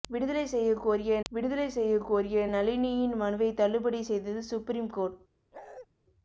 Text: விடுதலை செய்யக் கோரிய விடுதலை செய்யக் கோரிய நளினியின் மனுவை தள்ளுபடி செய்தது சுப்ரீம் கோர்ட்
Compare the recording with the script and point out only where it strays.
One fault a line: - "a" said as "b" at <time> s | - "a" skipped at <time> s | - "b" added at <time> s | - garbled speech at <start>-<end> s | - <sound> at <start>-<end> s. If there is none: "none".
- bark at 5.5-5.9 s